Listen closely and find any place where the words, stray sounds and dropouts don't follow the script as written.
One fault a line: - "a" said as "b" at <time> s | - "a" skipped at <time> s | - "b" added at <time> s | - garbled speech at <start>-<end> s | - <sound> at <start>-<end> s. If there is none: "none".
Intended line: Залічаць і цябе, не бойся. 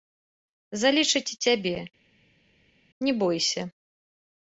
none